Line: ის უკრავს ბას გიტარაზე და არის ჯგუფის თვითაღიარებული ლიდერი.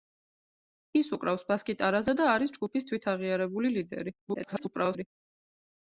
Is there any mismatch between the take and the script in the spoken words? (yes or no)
yes